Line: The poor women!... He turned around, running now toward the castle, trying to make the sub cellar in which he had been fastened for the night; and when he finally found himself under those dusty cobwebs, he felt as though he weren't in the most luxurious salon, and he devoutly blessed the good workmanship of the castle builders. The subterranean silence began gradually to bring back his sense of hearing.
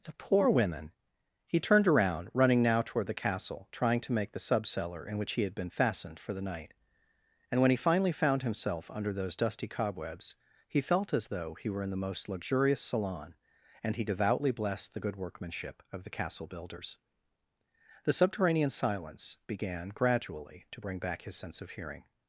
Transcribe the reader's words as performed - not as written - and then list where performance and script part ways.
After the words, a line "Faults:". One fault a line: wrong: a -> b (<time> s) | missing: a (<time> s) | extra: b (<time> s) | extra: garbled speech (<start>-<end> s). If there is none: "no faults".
The poor women!... He turned around, running now toward the castle, trying to make the sub cellar in which he had been fastened for the night; and when he finally found himself under those dusty cobwebs, he felt as though he were in the most luxurious salon, and he devoutly blessed the good workmanship of the castle builders. The subterranean silence began gradually to bring back his sense of hearing.
Faults:
wrong: weren't -> were (11.7 s)